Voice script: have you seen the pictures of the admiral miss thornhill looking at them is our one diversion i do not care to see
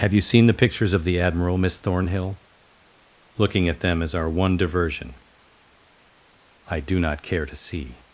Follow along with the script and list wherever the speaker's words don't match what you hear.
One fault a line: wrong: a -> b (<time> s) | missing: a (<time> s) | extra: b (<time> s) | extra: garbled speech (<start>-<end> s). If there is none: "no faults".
no faults